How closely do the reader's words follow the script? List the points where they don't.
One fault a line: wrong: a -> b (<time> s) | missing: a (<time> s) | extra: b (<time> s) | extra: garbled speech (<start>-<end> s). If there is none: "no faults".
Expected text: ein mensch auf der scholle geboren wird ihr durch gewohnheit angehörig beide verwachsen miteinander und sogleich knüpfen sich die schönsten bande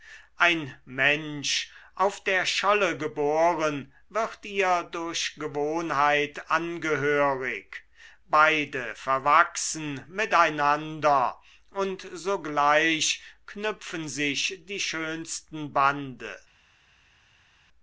no faults